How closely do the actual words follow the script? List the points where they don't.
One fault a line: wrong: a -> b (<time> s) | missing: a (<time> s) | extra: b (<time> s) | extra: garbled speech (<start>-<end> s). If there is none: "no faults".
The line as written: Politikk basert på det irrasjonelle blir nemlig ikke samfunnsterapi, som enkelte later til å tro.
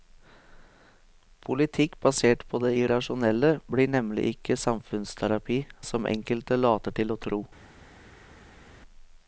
no faults